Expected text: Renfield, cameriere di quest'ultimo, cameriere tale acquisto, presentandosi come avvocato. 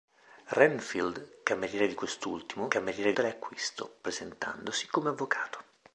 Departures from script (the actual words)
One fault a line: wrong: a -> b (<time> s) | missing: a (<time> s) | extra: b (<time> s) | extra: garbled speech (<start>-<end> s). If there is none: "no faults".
no faults